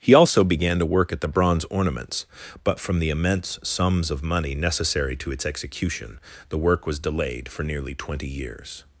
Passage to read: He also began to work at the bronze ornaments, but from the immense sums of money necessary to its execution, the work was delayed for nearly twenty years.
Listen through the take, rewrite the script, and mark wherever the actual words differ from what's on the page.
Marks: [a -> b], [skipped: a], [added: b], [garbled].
He also began to work at the bronze ornaments, but from the immense sums of money necessary to its execution, the work was delayed for nearly twenty years.